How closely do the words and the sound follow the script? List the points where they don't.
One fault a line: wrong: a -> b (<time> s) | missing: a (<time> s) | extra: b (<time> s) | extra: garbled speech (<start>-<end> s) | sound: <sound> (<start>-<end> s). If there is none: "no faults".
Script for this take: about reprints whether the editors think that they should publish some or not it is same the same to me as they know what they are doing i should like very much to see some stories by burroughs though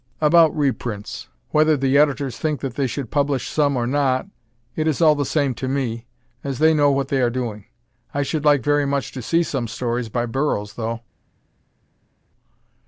wrong: same -> all (5.0 s)